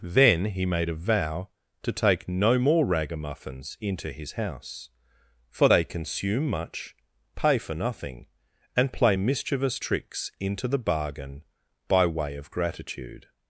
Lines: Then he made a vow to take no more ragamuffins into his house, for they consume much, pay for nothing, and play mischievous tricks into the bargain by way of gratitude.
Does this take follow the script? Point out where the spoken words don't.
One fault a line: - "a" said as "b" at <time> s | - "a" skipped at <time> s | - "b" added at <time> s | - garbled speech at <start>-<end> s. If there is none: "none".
none